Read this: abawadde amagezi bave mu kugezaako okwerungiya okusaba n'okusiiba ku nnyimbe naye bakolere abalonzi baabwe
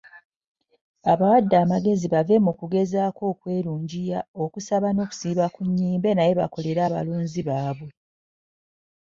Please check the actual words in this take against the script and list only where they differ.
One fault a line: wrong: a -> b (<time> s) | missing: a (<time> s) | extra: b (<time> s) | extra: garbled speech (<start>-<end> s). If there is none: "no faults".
no faults